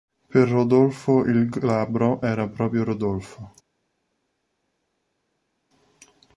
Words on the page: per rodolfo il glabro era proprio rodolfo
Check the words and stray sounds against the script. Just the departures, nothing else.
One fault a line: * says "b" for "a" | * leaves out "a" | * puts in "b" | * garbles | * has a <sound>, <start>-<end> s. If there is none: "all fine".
all fine